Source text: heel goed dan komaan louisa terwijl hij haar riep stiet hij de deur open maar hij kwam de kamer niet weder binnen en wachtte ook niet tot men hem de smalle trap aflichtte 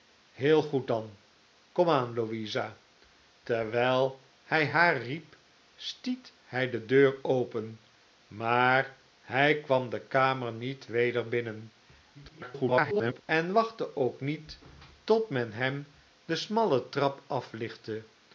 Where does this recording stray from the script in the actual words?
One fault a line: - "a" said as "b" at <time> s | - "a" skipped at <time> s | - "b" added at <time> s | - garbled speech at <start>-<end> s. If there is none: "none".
- garbled speech at 12.1-13.2 s